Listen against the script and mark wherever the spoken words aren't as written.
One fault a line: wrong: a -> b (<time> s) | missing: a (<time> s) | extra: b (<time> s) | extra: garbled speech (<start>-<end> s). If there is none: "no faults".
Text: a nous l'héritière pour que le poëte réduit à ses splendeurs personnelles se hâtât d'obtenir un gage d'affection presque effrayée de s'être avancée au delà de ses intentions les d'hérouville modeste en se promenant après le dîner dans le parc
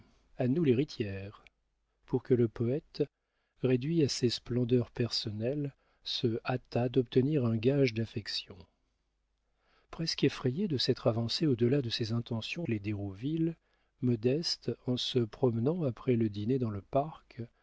no faults